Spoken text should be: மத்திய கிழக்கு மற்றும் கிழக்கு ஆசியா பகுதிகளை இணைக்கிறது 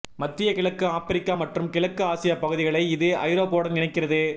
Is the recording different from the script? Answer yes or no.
yes